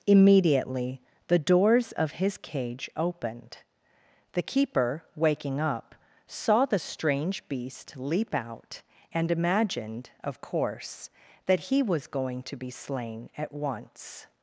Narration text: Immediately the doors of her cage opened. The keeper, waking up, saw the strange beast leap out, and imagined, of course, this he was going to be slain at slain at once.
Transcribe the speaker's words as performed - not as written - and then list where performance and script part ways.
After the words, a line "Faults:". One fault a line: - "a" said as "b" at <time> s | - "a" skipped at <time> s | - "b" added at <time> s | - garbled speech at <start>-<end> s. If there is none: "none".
Immediately the doors of his cage opened. The keeper, waking up, saw the strange beast leap out, and imagined, of course, that he was going to be slain at once.
Faults:
- "her" said as "his" at 2.1 s
- "this" said as "that" at 11.5 s
- "slain at" skipped at 13.5 s